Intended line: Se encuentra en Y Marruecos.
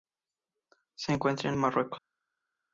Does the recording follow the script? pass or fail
pass